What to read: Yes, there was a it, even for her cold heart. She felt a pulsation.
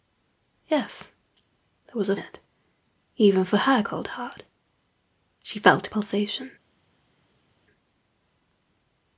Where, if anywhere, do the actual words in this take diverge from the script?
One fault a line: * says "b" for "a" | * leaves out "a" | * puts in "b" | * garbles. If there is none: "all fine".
all fine